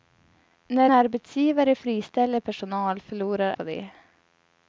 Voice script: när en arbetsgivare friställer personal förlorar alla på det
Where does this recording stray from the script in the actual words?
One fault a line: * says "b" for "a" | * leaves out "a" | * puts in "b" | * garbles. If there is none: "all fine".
* leaves out "en"
* leaves out "alla"